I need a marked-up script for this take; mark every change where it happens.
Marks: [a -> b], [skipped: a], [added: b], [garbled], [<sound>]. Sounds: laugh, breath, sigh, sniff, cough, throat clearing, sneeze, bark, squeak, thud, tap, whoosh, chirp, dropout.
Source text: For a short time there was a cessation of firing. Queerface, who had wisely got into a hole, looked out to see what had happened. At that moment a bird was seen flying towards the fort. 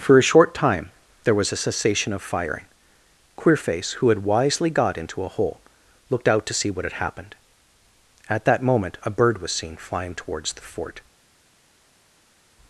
For a short time there was a cessation of firing. Queerface, who had wisely got into a hole, looked out to see what had happened. At that moment a bird was seen flying towards the fort.